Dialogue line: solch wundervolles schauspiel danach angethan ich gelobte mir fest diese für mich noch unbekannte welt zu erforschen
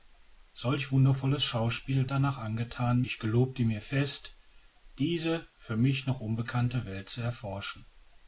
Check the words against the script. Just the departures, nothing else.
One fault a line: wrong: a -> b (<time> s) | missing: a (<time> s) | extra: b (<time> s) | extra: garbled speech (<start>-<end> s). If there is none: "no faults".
no faults